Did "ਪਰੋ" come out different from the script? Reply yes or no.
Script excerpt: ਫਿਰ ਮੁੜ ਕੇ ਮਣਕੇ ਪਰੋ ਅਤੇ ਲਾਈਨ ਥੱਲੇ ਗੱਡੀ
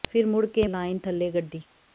yes